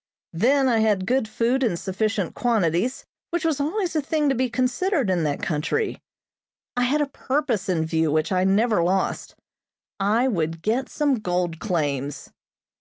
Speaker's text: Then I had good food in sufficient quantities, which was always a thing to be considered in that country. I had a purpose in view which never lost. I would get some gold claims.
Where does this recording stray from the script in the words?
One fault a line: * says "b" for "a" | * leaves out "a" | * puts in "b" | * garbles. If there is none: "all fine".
* puts in "I"